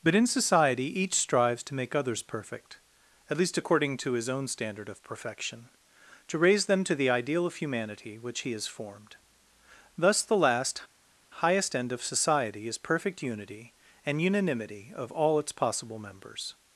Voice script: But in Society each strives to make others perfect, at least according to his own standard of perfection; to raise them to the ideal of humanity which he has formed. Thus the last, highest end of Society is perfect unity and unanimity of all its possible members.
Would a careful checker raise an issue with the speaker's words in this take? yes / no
no